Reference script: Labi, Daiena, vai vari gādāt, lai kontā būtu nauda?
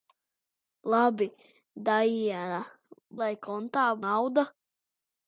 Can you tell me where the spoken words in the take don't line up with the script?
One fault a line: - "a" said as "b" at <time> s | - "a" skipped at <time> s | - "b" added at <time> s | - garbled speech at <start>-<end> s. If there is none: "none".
- "vai vari gādāt" skipped at 2.6 s
- "būtu" skipped at 3.9 s